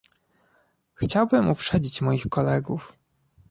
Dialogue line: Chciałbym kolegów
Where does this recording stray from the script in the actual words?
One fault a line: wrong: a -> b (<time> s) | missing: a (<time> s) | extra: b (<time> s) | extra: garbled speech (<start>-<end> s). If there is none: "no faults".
extra: uprzedzić moich (1.5 s)